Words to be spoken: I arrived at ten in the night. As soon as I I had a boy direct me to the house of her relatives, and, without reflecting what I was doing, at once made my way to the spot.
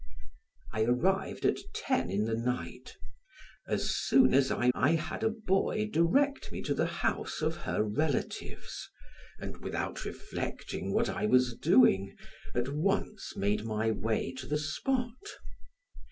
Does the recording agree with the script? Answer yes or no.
yes